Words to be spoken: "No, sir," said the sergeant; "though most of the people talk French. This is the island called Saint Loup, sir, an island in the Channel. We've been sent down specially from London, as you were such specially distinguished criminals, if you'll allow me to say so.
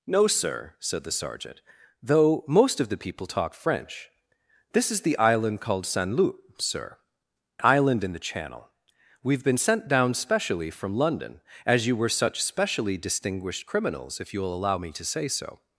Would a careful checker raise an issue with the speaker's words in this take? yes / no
yes